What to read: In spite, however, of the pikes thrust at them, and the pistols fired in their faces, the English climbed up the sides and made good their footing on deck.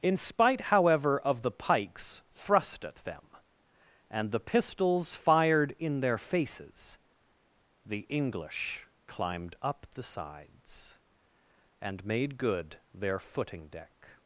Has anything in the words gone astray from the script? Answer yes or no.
yes